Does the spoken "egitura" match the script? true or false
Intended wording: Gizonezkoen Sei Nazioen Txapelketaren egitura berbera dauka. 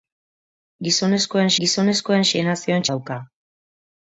false